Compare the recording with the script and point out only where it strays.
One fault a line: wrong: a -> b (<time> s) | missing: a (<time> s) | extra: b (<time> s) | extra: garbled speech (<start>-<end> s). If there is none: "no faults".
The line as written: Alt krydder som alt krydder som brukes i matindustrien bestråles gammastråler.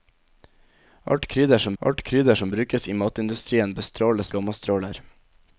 no faults